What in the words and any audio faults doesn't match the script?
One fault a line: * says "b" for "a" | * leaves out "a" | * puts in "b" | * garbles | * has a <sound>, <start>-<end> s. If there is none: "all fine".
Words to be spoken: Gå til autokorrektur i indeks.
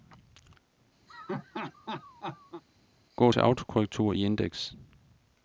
* has a laugh, 1.1-2.6 s